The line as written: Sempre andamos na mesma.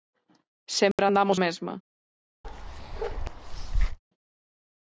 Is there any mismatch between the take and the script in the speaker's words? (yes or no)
yes